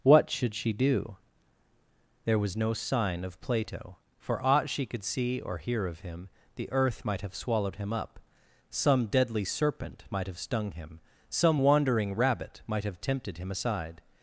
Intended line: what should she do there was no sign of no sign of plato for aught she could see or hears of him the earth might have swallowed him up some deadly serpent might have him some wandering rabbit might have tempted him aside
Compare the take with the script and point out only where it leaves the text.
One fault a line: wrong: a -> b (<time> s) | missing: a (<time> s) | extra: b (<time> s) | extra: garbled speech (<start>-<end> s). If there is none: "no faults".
missing: no sign of (3.4 s)
wrong: hears -> hear (5.6 s)
extra: stung (10.4 s)